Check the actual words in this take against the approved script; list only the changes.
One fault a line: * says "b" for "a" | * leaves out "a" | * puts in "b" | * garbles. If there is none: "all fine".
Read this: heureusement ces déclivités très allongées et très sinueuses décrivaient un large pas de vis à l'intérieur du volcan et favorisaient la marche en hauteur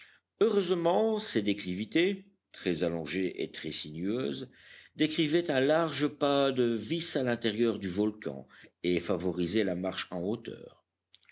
all fine